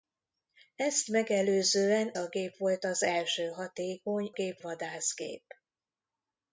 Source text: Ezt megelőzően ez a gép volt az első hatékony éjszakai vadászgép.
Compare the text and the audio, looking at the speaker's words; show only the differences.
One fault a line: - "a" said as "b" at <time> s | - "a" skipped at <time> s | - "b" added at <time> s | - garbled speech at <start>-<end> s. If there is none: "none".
- "ez" skipped at 2.1 s
- "éjszakai" said as "gép" at 4.3 s